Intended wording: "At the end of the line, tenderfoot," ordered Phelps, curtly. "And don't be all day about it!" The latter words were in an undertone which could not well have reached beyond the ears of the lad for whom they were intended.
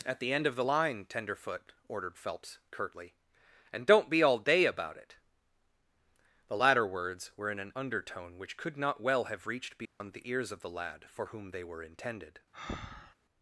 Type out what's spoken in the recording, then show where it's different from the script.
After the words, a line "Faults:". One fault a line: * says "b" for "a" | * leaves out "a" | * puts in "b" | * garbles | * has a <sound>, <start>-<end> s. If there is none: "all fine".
"At the end of the line, tenderfoot," ordered Phelps, curtly. "And don't be all day about it!" The latter words were in an undertone which could not well have reached beyond the ears of the lad for whom they were intended.
Faults:
* has a dropout, 9.9-10.0 s
* has a breath, 12.5-13.2 s